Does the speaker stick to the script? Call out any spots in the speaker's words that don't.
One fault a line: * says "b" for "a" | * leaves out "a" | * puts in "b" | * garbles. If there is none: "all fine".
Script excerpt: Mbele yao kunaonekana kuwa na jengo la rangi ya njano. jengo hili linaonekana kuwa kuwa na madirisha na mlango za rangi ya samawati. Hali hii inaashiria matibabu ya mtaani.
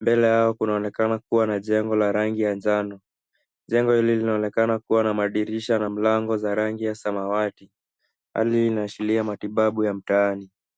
* leaves out "kuwa"